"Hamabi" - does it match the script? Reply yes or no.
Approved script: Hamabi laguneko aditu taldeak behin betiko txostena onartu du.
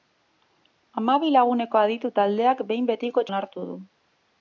yes